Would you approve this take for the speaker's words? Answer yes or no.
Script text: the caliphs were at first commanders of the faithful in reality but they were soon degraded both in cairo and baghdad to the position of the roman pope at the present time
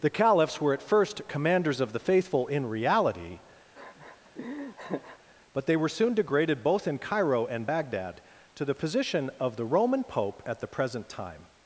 yes